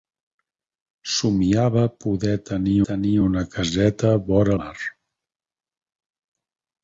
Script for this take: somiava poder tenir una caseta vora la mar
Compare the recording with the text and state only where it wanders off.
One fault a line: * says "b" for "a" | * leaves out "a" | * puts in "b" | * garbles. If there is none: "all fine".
* puts in "tenir"
* leaves out "la"